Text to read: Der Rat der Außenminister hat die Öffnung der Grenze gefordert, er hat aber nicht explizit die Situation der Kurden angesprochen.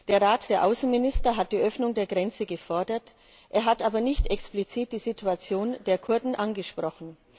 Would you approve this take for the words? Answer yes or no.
yes